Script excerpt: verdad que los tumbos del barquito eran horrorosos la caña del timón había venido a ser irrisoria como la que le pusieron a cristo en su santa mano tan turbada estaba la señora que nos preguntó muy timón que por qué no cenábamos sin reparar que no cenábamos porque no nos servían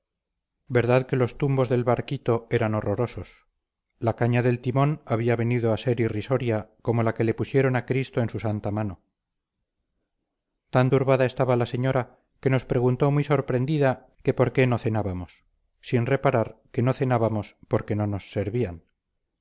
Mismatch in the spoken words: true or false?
true